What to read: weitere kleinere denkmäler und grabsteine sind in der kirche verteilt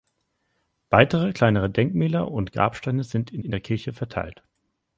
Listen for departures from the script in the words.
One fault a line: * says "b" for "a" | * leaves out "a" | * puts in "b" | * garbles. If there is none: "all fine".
* puts in "in"